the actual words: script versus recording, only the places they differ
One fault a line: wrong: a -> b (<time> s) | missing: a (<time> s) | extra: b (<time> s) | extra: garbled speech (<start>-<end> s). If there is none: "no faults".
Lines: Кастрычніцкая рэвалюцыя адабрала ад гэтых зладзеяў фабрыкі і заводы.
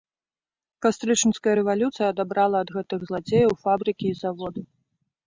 no faults